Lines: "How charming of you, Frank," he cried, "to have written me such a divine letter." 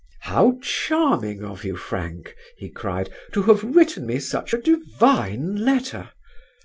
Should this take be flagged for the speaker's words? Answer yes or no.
no